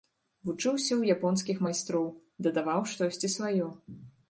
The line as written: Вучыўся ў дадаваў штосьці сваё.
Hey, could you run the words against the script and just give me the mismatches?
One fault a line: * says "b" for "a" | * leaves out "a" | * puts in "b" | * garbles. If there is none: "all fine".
* puts in "японскіх майстроў"